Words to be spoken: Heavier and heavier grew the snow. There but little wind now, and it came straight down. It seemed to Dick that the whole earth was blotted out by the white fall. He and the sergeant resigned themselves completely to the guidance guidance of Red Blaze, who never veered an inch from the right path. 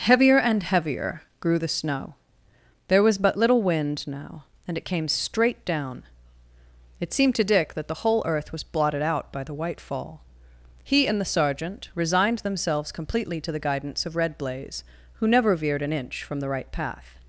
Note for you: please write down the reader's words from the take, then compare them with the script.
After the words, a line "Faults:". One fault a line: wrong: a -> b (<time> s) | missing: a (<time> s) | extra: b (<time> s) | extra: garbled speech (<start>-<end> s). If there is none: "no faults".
Heavier and heavier grew the snow. There was but little wind now, and it came straight down. It seemed to Dick that the whole earth was blotted out by the white fall. He and the sergeant resigned themselves completely to the guidance of Red Blaze, who never veered an inch from the right path.
Faults:
extra: was (3.0 s)
missing: guidance (14.1 s)